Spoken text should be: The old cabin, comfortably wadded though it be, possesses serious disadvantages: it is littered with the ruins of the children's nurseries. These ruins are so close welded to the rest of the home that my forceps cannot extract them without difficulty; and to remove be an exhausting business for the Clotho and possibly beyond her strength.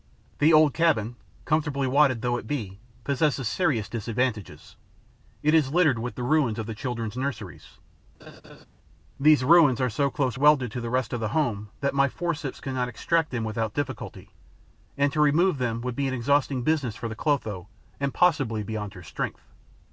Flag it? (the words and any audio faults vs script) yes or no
yes